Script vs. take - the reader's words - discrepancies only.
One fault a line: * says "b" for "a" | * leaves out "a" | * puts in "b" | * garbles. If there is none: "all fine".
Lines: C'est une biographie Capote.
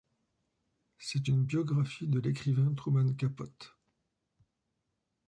* puts in "de l'écrivain Truman"